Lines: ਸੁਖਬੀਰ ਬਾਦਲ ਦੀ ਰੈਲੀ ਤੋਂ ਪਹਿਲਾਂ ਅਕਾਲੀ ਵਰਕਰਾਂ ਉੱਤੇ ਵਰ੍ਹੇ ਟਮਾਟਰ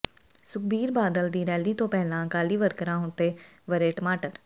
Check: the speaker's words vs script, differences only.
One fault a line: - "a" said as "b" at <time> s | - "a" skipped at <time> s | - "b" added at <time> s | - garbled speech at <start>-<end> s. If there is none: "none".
none